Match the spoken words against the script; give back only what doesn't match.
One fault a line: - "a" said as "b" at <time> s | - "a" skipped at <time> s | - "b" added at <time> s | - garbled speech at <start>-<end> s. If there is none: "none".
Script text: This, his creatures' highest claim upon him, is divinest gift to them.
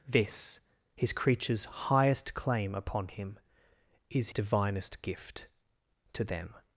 none